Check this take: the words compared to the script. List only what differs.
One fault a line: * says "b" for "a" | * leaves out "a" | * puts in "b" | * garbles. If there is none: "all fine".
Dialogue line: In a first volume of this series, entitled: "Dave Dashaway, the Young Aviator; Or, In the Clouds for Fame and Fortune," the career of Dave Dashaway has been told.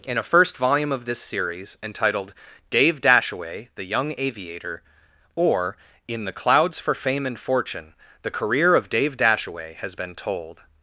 all fine